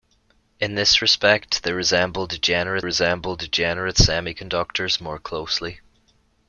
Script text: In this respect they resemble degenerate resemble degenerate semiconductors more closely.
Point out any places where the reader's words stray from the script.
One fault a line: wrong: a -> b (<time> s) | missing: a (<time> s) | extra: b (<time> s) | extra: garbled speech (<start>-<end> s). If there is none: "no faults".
no faults